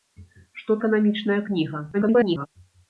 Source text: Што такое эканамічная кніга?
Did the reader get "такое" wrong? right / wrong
wrong